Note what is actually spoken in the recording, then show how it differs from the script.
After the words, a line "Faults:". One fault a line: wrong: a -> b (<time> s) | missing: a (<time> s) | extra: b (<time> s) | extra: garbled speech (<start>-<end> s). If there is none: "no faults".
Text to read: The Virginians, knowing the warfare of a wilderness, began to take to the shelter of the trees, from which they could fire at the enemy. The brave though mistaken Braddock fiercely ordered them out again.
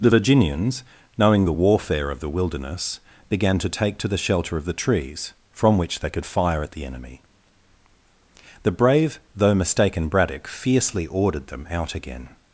The Virginians, knowing the warfare of the wilderness, began to take to the shelter of the trees, from which they could fire at the enemy. The brave though mistaken Braddock fiercely ordered them out again.
Faults:
wrong: a -> the (2.2 s)